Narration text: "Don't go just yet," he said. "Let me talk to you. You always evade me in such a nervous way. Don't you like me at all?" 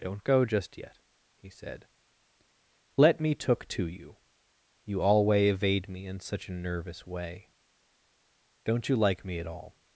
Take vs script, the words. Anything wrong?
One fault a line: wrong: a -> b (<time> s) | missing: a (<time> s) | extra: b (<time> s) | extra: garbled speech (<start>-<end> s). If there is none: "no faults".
wrong: talk -> took (3.4 s)
wrong: always -> alway (5.0 s)